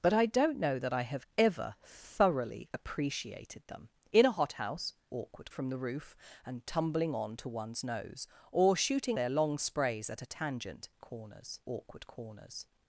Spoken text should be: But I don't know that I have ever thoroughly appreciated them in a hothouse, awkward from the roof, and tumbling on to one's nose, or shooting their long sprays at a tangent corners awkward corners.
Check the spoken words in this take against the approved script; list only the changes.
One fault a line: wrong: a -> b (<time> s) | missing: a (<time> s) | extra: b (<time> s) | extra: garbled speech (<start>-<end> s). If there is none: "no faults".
no faults